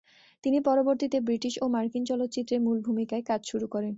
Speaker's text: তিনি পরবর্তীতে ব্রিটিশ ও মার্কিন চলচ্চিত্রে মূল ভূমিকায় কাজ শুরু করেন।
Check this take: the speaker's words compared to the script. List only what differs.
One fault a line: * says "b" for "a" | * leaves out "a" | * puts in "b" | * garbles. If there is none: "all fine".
all fine